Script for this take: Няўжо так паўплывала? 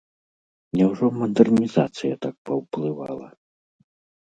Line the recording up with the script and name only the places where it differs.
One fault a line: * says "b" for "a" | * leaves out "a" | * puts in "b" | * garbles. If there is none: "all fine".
* puts in "мадэрнізацыя"